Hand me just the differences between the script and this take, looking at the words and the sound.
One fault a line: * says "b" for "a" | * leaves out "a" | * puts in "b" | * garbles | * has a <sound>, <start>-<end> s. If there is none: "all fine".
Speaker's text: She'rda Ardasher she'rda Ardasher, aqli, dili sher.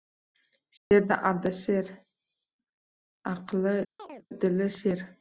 * has a dropout, 0.8-0.9 s
* leaves out "she'rda Ardasher"
* has a chirp, 4.0-4.3 s